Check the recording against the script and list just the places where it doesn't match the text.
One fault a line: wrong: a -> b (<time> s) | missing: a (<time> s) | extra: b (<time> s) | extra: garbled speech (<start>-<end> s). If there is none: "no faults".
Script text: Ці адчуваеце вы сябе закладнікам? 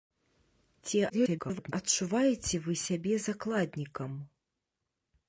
extra: garbled speech (1.1-1.7 s)